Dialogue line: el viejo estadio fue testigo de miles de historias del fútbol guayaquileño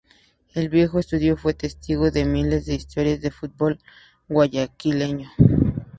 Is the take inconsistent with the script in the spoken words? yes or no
no